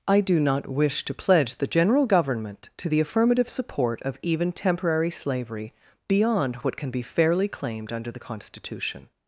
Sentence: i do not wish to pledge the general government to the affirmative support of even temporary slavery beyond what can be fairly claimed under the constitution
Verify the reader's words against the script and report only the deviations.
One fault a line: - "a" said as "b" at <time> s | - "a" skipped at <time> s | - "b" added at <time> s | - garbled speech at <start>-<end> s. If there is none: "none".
none